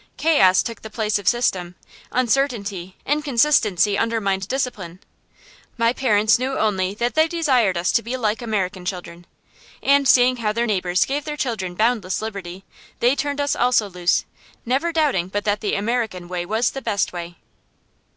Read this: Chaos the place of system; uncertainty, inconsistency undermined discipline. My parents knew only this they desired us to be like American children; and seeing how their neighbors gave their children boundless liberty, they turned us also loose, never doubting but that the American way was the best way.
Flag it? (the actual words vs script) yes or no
yes